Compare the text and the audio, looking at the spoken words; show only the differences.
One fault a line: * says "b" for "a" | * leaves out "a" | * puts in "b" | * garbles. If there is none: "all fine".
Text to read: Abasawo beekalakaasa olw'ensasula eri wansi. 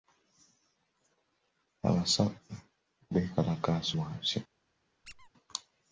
* leaves out "olw'ensasula eri"